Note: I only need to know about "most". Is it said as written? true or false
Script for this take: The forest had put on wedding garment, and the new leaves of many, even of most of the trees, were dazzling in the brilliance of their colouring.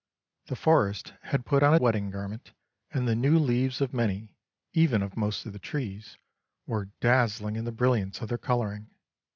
true